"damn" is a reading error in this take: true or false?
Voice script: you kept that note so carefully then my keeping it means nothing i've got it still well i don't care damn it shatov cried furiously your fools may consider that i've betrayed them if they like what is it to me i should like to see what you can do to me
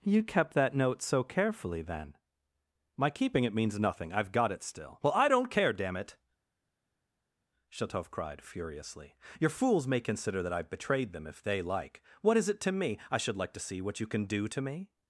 false